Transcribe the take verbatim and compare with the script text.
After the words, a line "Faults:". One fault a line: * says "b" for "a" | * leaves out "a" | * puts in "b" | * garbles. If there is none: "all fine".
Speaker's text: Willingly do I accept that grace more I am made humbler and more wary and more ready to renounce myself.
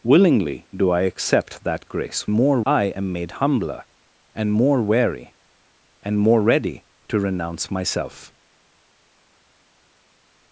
Willingly do I accept that grace more I am made humbler and more wary and more ready to renounce myself.
Faults:
all fine